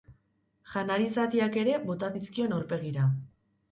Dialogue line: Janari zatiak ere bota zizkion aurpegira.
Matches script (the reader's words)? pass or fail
pass